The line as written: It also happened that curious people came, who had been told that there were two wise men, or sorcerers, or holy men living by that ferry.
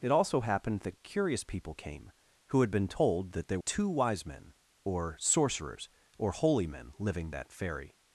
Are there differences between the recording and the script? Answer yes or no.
yes